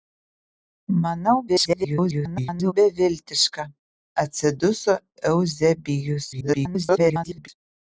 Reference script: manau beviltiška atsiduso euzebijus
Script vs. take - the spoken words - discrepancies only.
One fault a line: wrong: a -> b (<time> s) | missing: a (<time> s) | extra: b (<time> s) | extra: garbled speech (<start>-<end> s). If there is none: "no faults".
extra: garbled speech (1.5-2.7 s)
extra: garbled speech (6.3-7.5 s)